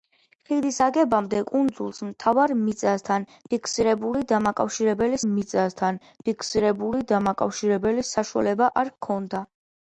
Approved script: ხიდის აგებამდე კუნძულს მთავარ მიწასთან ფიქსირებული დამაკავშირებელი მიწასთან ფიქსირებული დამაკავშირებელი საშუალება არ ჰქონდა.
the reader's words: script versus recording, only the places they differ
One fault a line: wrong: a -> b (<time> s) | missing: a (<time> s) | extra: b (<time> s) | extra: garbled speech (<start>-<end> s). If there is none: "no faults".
no faults